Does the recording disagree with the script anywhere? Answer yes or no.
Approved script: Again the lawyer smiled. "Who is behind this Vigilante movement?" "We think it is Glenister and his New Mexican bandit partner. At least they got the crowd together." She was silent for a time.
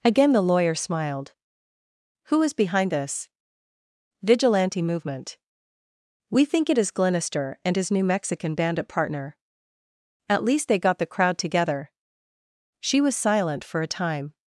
no